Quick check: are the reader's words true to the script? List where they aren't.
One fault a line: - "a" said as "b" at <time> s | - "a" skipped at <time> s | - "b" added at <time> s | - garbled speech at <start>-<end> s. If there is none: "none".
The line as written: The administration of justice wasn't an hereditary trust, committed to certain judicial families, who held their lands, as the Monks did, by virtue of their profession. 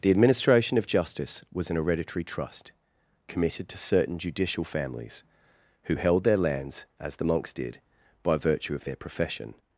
- "wasn't" said as "was" at 1.5 s